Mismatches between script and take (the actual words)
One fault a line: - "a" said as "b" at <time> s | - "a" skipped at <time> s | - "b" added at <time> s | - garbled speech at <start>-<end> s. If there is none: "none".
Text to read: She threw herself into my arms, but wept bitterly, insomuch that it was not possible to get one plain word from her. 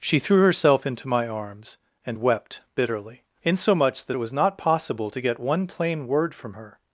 - "but" said as "and" at 2.0 s